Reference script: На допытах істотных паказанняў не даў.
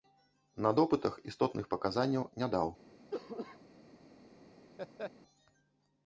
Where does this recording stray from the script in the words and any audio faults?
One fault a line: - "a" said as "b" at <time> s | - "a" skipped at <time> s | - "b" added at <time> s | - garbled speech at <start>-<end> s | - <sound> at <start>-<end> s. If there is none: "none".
- cough at 3.1-3.6 s
- laugh at 4.8-5.1 s